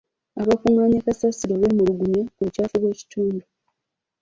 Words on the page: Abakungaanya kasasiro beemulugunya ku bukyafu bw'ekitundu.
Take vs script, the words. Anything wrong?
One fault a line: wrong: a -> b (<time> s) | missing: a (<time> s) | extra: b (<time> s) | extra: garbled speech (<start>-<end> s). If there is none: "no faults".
no faults